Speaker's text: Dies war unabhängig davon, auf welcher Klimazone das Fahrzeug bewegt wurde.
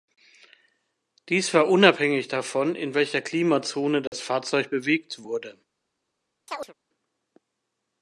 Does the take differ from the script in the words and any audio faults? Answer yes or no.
yes